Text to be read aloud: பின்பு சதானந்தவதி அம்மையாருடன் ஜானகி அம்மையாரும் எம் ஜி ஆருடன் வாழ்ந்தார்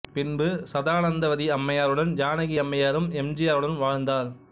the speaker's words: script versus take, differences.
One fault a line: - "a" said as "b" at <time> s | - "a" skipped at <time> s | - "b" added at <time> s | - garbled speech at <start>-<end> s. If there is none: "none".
none